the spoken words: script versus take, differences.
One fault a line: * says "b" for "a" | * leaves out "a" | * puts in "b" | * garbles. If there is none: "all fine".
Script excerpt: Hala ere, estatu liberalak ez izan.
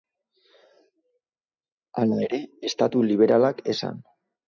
all fine